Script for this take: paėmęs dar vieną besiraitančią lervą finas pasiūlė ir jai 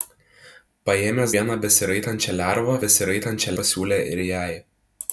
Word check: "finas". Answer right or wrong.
wrong